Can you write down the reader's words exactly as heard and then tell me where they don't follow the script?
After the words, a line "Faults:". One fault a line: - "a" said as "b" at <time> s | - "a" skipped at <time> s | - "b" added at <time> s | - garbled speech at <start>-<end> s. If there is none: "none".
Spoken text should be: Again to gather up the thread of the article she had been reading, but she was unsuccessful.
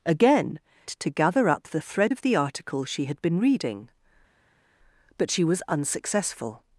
Again to gather up the thread of the article she had been reading, but she was unsuccessful.
Faults:
none